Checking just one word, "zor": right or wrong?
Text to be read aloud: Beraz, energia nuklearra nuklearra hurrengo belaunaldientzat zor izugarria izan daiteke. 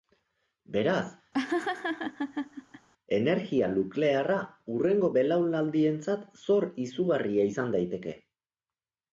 right